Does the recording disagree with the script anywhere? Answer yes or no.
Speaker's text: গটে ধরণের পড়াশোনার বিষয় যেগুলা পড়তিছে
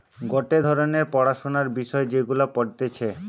no